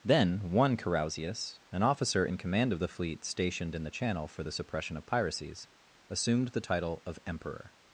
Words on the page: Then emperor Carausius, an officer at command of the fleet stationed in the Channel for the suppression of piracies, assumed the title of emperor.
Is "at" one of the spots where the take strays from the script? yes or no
yes